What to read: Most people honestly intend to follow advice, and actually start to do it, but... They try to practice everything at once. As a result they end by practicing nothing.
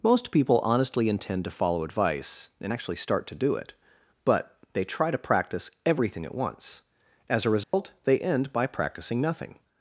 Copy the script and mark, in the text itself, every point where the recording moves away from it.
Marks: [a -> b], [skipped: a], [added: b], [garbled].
Most people honestly intend to follow advice, and actually start to do it, but... They try to practice everything at once. As a result they end by practicing nothing.